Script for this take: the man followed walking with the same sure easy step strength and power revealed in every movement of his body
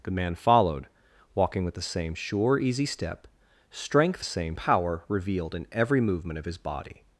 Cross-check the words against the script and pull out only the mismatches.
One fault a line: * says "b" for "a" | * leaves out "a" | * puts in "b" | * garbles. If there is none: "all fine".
* says "same" for "and"